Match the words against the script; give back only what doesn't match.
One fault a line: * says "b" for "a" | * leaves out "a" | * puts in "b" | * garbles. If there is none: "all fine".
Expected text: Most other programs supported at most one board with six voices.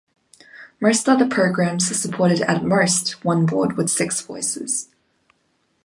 all fine